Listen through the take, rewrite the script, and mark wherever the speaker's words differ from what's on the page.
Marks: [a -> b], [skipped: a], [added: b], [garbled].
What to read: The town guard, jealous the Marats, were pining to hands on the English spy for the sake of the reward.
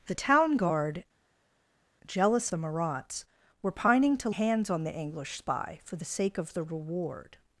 The town guard, jealous the Marats, were pining to hands on the English spy for the sake of the reward.